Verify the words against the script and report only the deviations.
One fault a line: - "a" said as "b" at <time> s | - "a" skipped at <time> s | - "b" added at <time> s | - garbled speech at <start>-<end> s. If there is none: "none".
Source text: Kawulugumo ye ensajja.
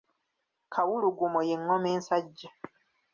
- "ngoma" added at 1.6 s